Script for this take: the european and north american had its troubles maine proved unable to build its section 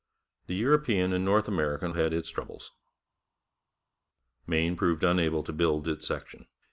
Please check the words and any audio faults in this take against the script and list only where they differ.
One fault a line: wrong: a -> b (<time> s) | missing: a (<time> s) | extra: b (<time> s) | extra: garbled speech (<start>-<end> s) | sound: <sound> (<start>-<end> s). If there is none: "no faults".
no faults